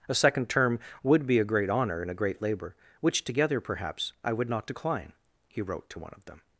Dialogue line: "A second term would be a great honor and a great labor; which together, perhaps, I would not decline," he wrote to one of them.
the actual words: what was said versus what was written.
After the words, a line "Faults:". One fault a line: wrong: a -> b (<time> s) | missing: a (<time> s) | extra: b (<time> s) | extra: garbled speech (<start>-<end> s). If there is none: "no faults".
"A second term would be a great honor and a great labor; which together, perhaps, I would not decline," he wrote to one of them.
Faults:
no faults